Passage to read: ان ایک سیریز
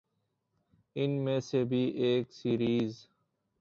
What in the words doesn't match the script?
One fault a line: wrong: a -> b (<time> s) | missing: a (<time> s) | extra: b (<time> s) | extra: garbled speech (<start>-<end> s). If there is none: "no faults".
extra: میں سے بھی (1.2 s)